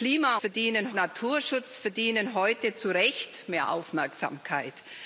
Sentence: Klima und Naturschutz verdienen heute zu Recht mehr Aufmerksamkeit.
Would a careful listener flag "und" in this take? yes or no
yes